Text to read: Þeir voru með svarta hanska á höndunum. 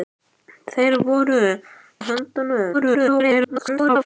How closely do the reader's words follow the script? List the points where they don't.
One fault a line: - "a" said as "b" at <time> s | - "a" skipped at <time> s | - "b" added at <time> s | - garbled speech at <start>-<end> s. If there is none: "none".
- "með svarta hanska" skipped at 1.4 s
- garbled speech at 2.7-4.1 s